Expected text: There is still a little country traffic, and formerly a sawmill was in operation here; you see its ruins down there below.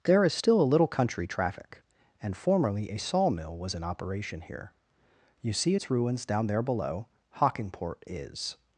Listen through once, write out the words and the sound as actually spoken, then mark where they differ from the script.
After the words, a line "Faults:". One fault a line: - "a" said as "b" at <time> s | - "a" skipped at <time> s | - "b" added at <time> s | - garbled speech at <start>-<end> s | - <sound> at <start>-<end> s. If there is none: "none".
There is still a little country traffic, and formerly a sawmill was in operation here; you see its ruins down there below. Hockingport is
Faults:
- "Hockingport is" added at 7.3 s